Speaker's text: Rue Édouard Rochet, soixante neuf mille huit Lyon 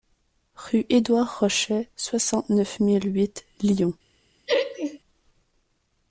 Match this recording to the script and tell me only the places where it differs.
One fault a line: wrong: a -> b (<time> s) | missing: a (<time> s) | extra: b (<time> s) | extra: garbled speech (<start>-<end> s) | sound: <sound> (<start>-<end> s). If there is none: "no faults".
sound: laugh (4.5-5.0 s)